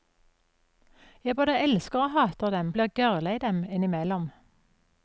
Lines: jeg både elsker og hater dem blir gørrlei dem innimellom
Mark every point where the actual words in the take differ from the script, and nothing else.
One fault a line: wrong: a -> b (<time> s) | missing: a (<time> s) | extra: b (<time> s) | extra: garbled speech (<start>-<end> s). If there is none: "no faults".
no faults